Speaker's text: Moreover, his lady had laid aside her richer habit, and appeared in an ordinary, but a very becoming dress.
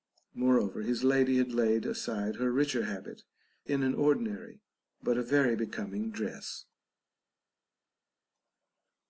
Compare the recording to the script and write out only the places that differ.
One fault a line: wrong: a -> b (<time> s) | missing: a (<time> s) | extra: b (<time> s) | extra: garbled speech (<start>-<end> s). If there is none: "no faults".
missing: and appeared (3.2 s)